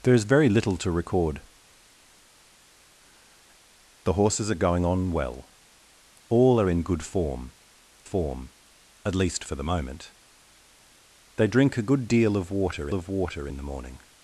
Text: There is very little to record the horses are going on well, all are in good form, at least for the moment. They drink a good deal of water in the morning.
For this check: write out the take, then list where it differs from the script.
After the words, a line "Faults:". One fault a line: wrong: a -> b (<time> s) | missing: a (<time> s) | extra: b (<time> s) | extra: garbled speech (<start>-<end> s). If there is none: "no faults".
There is very little to record the horses are going on well, all are in good form form, at least for the moment. They drink a good deal of water of water in the morning.
Faults:
extra: form (8.0 s)
extra: of water (12.9 s)